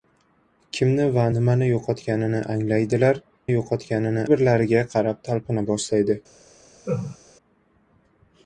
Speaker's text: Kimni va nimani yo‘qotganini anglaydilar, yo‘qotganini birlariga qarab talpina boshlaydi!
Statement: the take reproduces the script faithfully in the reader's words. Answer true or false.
true